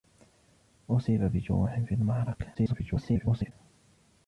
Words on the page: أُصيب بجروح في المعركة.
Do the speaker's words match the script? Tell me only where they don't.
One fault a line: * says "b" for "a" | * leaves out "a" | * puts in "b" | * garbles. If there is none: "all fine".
* garbles